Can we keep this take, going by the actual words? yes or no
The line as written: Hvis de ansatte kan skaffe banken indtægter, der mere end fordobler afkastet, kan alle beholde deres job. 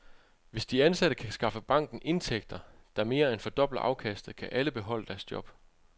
yes